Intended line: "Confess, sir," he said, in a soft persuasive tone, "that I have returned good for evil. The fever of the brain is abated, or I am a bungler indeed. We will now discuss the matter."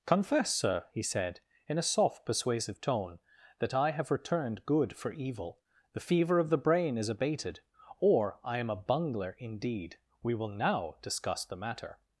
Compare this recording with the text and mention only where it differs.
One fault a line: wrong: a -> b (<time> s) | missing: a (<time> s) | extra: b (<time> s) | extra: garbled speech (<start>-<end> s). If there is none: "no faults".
no faults